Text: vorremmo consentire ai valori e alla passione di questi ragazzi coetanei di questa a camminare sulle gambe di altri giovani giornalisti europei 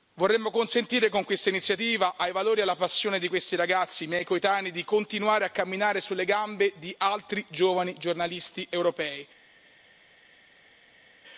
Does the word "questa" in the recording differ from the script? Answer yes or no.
yes